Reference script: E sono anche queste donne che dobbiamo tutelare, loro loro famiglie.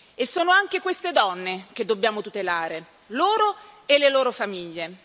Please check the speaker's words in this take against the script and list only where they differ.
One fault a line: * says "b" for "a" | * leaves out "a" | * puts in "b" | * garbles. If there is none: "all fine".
* puts in "e le"